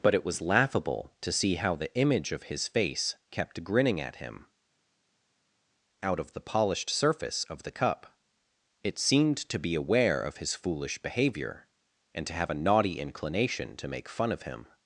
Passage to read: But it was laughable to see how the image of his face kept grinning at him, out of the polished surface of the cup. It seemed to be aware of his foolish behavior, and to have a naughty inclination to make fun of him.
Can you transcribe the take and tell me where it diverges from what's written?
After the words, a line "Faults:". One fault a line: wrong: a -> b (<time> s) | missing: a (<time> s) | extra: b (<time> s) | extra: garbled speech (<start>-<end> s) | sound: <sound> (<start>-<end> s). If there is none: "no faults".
But it was laughable to see how the image of his face kept grinning at him, out of the polished surface of the cup. It seemed to be aware of his foolish behavior, and to have a naughty inclination to make fun of him.
Faults:
no faults